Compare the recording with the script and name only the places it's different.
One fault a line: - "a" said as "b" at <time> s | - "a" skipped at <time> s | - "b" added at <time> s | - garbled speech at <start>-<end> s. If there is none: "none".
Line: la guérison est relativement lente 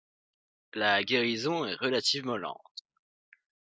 none